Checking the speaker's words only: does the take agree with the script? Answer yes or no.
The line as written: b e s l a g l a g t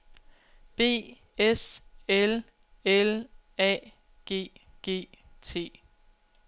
no